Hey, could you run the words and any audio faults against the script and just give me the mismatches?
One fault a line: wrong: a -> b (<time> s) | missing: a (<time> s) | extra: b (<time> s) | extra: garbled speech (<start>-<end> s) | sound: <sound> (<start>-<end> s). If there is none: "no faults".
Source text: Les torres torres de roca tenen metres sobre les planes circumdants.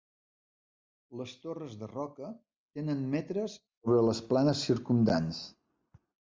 missing: torres (1.8 s)